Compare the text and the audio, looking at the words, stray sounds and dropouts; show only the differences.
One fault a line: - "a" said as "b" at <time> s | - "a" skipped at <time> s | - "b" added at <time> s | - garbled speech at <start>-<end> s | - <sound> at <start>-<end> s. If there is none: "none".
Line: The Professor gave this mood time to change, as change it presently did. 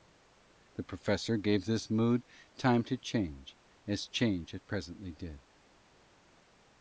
none